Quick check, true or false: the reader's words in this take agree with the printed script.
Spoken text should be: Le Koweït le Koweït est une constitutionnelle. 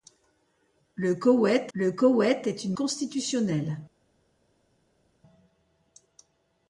true